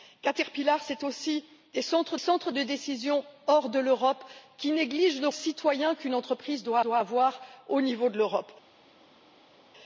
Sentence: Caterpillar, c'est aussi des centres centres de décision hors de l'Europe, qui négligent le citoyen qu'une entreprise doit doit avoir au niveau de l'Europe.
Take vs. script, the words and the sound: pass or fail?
pass